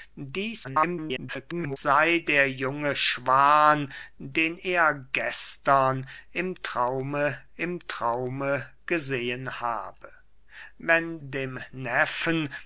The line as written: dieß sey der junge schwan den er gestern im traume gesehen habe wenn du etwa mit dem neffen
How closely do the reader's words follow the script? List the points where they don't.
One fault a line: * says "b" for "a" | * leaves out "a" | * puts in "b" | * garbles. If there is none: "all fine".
* garbles
* puts in "im traume"
* leaves out "du etwa mit"